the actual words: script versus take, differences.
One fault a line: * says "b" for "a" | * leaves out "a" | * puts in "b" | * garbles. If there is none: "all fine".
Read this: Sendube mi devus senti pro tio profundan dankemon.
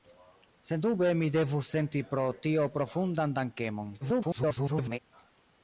* garbles